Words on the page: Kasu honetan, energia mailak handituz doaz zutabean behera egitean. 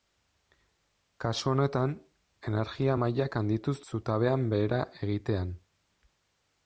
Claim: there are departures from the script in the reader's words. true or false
true